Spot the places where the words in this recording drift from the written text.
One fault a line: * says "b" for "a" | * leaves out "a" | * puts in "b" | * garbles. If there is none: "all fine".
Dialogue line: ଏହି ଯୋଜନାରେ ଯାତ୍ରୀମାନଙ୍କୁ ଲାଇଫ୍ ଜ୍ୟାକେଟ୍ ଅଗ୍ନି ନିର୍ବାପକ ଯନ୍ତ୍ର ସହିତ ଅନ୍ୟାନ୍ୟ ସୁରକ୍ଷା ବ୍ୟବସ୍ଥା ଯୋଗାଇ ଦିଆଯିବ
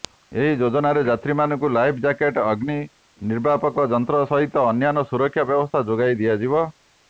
all fine